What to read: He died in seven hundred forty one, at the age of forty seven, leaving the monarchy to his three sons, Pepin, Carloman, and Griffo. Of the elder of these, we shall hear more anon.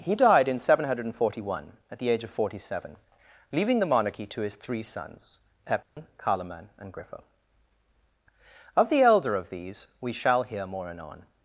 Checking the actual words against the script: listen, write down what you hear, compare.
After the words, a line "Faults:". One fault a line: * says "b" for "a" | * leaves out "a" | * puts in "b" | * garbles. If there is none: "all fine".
He died in seven hundred forty one, at the age of forty seven, leaving the monarchy to his three sons, Pepin, Carloman, and Griffo. Of the elder of these, we shall hear more anon.
Faults:
all fine